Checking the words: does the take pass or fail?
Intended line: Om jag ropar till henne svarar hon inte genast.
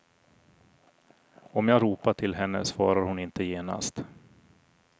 pass